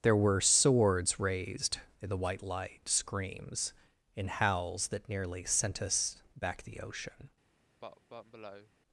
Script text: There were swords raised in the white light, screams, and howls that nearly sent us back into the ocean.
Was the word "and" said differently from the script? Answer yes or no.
yes